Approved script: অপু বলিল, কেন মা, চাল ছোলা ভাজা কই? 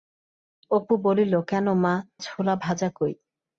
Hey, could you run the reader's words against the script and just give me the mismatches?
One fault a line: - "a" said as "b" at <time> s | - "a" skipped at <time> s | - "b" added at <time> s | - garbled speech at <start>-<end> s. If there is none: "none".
- "চাল" skipped at 1.9 s